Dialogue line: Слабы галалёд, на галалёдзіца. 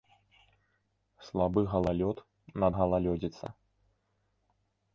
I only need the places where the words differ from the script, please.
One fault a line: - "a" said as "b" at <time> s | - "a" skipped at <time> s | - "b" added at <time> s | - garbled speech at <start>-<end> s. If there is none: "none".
none